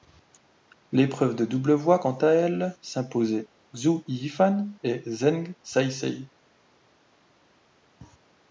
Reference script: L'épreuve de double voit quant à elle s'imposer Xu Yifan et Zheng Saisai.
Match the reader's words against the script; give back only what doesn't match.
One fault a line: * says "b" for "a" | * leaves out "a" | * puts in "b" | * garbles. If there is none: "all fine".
all fine